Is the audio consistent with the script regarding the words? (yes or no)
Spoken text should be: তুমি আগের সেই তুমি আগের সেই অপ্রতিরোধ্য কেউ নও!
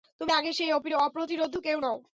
no